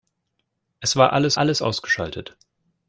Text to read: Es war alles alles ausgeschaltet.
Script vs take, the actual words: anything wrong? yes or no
no